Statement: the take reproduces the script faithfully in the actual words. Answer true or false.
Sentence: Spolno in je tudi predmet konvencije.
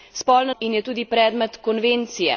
true